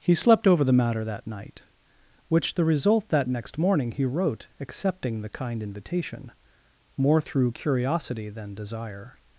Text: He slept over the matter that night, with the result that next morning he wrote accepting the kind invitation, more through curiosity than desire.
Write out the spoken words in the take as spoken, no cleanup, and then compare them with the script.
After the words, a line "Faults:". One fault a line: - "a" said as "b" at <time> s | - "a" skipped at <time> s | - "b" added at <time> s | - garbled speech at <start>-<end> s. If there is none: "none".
He slept over the matter that night, which the result that next morning he wrote accepting the kind invitation, more through curiosity than desire.
Faults:
- "with" said as "which" at 2.3 s